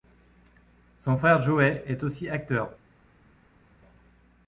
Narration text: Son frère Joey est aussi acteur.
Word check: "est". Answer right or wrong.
right